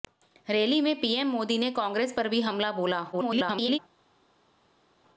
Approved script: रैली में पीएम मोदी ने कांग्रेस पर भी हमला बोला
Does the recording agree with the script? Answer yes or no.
no